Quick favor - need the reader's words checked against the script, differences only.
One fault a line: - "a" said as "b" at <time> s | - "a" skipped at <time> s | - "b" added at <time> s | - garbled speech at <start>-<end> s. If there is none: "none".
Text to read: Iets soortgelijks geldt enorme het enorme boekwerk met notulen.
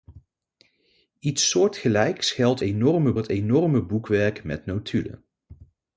none